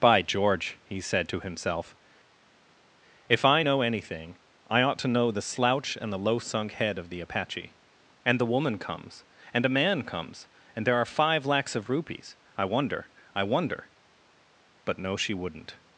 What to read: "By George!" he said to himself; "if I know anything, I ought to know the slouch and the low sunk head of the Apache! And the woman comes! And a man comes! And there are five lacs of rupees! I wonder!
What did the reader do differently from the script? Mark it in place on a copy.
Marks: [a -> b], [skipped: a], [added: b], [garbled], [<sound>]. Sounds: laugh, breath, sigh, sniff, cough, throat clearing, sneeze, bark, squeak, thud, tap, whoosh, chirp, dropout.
"By George!" he said to himself; "if I know anything, I ought to know the slouch and the low sunk head of the Apache! And the woman comes! And a man comes! And there are five lacs of rupees! I wonder! [added: I wonder But no she wouldn't]